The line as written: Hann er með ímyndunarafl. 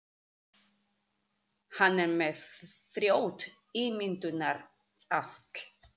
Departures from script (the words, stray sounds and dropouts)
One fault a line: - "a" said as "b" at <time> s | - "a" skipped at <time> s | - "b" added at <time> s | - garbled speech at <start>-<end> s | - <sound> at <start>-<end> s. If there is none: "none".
- "frjótt" added at 3.0 s